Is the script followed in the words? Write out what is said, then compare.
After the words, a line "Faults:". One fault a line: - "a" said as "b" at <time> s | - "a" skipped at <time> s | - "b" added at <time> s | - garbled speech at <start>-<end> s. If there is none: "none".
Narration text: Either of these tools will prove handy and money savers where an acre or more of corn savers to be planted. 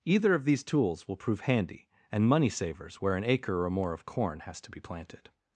Either of these tools will prove handy and money savers where an acre or more of corn has to be planted.
Faults:
- "savers" said as "has" at 4.4 s